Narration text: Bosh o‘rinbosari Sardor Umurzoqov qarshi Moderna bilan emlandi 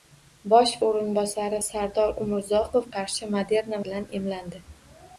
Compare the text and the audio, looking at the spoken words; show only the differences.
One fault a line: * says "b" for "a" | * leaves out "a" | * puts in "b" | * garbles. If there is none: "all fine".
all fine